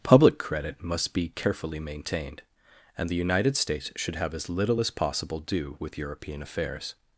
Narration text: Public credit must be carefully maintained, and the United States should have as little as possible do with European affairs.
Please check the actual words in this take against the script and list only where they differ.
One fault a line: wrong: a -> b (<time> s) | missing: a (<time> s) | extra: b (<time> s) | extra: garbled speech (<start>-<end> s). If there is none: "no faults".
no faults